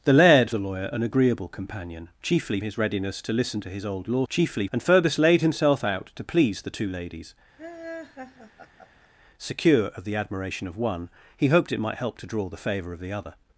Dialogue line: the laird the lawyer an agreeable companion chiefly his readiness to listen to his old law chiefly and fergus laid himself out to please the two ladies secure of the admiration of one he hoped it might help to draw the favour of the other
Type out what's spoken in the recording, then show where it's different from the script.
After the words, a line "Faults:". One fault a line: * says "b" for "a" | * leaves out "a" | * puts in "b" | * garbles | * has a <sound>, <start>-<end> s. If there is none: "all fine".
the laird the lawyer an agreeable companion chiefly his readiness to listen to his old law chiefly and fergus laid himself out to please the two ladies secure of the admiration of one he hoped it might help to draw the favour of the other
Faults:
* has a laugh, 7.6-9.1 s